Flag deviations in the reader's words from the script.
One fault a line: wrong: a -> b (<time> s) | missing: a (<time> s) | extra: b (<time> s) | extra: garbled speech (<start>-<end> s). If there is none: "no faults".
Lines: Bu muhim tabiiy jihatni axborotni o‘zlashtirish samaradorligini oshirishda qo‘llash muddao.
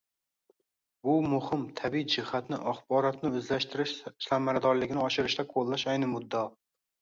extra: ayni (6.0 s)